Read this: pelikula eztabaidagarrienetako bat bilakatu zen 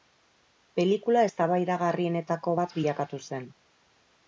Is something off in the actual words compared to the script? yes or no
no